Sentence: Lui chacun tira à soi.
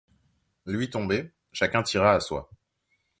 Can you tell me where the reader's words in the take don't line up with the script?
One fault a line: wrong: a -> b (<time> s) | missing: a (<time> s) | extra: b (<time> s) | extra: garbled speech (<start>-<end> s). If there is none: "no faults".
extra: tombé (0.9 s)